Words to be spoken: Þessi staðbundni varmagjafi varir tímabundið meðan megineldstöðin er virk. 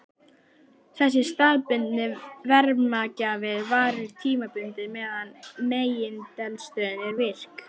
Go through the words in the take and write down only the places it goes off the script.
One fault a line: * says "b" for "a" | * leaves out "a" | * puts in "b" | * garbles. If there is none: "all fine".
all fine